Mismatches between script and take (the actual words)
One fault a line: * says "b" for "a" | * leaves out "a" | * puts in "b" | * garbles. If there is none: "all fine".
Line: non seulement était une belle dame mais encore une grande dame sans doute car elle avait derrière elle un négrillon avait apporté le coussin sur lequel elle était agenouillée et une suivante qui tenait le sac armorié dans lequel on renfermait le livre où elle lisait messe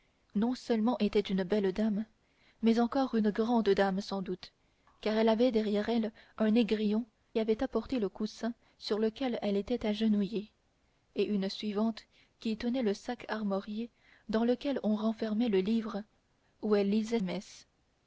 all fine